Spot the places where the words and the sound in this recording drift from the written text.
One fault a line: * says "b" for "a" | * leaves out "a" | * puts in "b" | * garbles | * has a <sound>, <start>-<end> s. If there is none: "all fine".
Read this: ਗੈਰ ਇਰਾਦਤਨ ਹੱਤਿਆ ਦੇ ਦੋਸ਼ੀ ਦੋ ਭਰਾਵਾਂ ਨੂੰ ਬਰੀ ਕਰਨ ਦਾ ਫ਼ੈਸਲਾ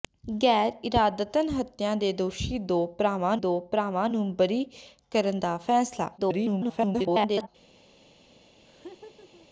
* puts in "ਦੋ ਭਰਾਵਾਂ"
* garbles
* has a laugh, 8.6-9.5 s